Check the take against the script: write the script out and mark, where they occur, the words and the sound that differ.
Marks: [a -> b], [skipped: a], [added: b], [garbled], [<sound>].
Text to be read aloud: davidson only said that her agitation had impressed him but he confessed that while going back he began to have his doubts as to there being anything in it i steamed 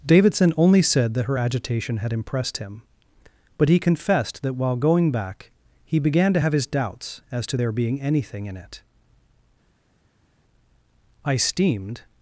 davidson only said that her agitation had impressed him but he confessed that while going back he began to have his doubts as to there being anything in it i steamed